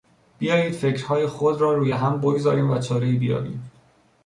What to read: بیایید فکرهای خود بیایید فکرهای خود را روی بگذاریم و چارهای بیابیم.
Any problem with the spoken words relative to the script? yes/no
yes